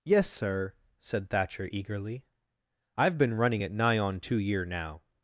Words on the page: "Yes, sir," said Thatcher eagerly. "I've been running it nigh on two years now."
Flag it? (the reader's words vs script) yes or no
yes